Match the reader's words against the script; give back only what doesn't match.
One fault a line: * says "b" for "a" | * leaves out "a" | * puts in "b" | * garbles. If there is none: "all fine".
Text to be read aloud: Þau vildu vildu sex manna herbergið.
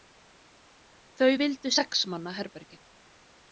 * leaves out "vildu"